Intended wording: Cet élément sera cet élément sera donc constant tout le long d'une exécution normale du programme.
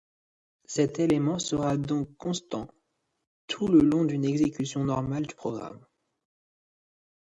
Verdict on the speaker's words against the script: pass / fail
fail